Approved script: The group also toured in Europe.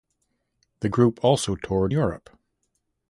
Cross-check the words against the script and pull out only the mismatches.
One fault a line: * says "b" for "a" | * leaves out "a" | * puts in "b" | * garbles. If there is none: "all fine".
* leaves out "in"